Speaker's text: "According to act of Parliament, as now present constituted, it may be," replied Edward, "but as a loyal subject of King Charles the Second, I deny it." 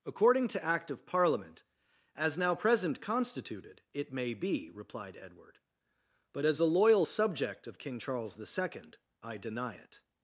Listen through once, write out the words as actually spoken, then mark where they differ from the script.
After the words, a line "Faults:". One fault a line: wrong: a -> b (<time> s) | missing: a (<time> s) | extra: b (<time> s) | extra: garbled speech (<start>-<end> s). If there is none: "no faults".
"According to act of Parliament, as now present constituted, it may be," replied Edward, "but as a loyal subject of King Charles the Second, I deny it."
Faults:
no faults